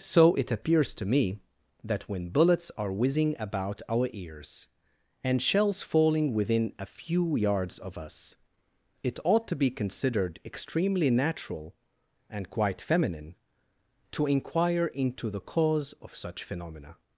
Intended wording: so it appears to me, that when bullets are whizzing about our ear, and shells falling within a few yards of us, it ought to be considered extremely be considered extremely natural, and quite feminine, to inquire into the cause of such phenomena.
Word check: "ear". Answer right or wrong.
wrong